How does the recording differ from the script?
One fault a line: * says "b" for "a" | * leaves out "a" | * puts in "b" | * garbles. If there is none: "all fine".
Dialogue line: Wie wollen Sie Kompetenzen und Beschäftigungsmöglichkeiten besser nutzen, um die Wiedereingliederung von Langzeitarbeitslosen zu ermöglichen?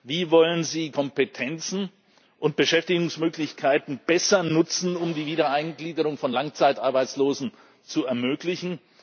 all fine